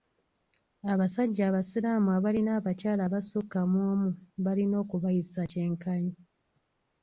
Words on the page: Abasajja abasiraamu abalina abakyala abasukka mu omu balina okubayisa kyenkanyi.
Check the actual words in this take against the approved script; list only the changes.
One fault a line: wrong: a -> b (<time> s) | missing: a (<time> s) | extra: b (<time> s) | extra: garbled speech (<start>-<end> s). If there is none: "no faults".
no faults